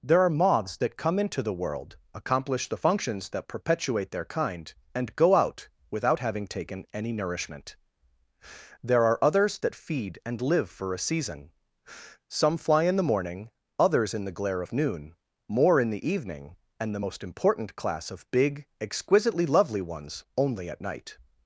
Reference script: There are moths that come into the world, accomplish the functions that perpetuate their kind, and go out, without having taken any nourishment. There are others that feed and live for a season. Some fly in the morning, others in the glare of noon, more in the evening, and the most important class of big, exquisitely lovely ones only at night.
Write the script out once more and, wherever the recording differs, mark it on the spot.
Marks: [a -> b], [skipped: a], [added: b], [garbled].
There are moths that come into the world, accomplish the functions that perpetuate their kind, and go out, without having taken any nourishment. There are others that feed and live for a season. Some fly in the morning, others in the glare of noon, more in the evening, and the most important class of big, exquisitely lovely ones only at night.